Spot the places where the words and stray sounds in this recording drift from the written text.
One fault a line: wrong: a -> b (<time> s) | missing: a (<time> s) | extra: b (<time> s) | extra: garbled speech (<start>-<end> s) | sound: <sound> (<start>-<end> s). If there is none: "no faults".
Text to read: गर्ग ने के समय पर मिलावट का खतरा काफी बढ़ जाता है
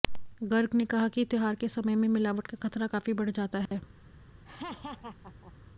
extra: कहा कि त्योहार (0.8 s)
wrong: पर -> में (1.9 s)
sound: dropout (3.7-3.7 s)
sound: laugh (4.4-5.5 s)